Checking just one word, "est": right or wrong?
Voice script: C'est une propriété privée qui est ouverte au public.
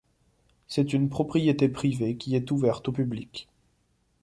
right